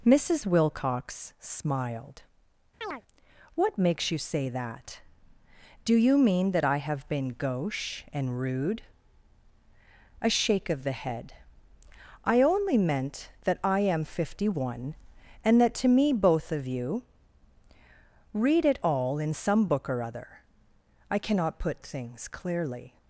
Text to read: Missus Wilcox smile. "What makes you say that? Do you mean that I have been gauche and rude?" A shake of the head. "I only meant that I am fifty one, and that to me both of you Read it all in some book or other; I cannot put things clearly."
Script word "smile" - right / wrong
wrong